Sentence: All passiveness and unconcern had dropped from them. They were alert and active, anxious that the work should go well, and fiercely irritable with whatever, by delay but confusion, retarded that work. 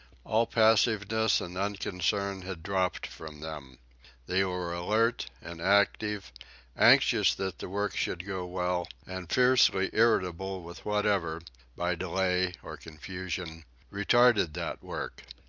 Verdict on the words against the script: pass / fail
fail